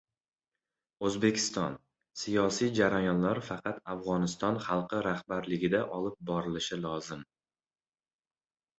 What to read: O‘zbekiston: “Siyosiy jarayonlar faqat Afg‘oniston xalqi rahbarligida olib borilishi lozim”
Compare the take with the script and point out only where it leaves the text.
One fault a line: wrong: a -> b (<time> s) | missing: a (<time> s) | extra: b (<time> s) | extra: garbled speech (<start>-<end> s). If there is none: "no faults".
no faults